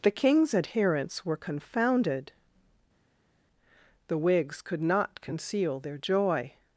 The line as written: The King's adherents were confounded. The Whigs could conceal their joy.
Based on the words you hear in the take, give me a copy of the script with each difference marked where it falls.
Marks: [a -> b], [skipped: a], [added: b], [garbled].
The King's adherents were confounded. The Whigs could [added: not] conceal their joy.